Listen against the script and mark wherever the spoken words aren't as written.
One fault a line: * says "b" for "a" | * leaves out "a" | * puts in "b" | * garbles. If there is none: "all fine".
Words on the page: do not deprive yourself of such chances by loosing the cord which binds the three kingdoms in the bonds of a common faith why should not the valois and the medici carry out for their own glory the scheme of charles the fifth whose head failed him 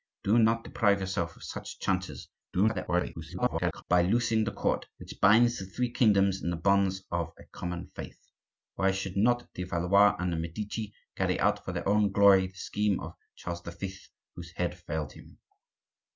* garbles